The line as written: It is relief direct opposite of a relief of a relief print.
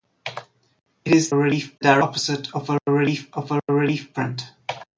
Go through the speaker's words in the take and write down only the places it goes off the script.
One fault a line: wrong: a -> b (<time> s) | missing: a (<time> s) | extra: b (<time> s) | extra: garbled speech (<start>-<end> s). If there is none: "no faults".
no faults